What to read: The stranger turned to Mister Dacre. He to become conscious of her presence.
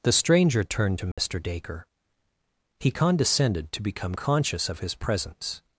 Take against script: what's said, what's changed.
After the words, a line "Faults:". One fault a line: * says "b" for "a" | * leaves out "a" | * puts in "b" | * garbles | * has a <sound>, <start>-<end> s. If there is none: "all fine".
The stranger turned to Mister Dacre. He condescended to become conscious of his presence.
Faults:
* has a dropout, 1.1-1.2 s
* puts in "condescended"
* says "his" for "her"